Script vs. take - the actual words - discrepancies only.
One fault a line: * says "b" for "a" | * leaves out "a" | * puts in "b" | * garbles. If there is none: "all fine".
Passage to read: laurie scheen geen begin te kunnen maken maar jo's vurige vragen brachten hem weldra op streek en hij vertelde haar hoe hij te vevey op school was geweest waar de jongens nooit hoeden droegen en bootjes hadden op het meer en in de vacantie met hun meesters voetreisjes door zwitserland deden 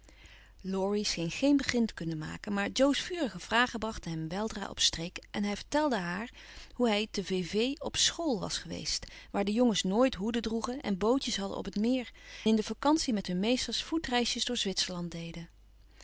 * leaves out "en"